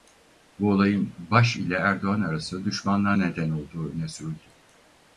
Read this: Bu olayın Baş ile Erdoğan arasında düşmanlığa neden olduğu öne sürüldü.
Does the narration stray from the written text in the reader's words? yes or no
no